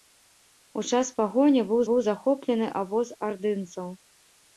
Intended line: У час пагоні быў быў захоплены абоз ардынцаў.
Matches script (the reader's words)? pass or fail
pass